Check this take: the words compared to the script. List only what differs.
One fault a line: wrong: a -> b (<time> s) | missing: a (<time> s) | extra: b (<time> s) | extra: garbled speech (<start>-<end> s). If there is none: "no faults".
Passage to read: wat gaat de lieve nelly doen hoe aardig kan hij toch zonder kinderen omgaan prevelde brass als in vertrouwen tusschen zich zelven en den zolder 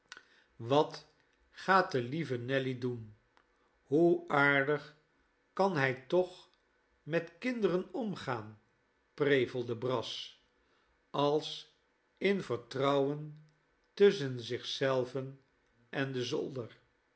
wrong: zonder -> met (7.0 s)